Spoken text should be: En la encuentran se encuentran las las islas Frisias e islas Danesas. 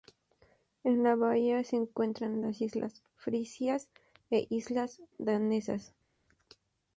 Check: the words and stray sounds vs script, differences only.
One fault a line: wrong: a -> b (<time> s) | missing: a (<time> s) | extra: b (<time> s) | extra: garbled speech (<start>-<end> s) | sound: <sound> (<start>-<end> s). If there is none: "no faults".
wrong: encuentran -> bahía (1.1 s)
missing: las (2.6 s)